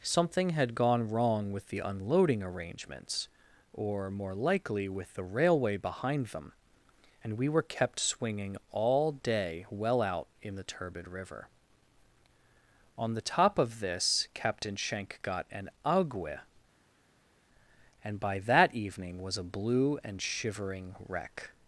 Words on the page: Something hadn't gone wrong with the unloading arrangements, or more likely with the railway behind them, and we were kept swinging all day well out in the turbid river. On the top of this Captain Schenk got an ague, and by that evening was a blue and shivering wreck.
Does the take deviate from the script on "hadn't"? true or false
true